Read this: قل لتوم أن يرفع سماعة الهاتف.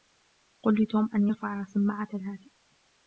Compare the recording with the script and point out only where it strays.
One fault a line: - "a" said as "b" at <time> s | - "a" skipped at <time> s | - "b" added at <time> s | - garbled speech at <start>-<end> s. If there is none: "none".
none